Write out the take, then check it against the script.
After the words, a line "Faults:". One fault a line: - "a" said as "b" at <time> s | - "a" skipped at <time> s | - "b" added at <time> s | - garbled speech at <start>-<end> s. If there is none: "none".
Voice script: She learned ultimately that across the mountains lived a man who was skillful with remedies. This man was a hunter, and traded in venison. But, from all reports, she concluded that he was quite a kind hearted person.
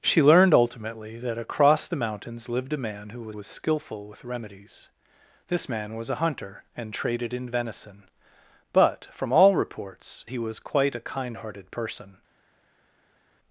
She learned ultimately that across the mountains lived a man who was was skillful with remedies. This man was a hunter, and traded in venison. But, from all reports, he was quite a kind hearted person.
Faults:
- "was" added at 3.3 s
- "she concluded that" skipped at 10.2 s